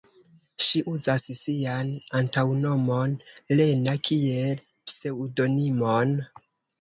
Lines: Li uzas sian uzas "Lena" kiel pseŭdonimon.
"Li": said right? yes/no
no